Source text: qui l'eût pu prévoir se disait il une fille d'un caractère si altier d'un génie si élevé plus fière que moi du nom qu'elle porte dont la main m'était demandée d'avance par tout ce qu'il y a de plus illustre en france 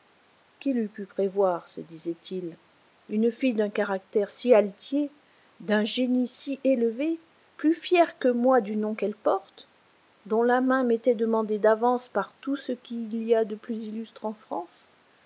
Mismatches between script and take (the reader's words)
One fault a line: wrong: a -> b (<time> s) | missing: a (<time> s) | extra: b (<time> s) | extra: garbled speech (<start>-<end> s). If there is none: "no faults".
no faults